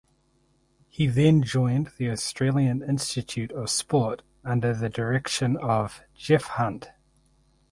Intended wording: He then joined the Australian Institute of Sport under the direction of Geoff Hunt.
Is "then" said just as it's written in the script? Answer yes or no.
yes